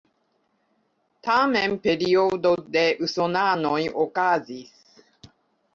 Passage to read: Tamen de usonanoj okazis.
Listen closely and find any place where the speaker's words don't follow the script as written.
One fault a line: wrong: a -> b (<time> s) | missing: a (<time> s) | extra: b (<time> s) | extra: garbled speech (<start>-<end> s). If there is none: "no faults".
extra: periodo (1.8 s)